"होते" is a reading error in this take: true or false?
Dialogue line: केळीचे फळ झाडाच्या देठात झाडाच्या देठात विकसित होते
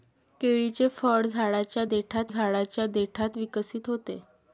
false